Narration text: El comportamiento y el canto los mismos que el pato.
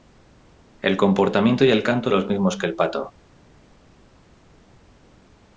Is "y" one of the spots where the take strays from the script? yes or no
no